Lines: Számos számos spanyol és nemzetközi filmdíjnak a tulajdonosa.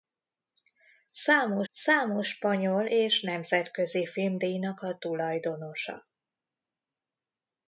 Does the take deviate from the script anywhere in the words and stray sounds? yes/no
no